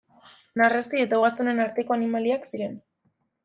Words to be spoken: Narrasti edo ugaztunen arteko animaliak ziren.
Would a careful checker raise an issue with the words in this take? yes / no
yes